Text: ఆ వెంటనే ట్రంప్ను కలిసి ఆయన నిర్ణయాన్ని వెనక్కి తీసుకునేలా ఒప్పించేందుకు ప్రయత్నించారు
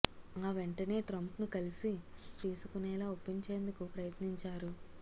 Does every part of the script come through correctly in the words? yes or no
no